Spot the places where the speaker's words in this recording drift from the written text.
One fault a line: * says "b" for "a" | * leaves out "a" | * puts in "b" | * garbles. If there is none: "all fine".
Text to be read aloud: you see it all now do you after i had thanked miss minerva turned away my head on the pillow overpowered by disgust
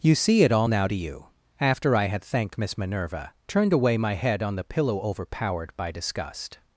all fine